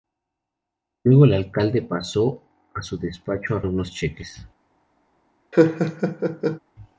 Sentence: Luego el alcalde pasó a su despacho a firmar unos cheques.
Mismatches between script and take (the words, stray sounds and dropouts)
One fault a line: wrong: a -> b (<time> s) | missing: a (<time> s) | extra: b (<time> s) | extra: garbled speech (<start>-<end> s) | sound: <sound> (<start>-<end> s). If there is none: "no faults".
missing: firmar (3.6 s)
sound: laugh (5.5-6.6 s)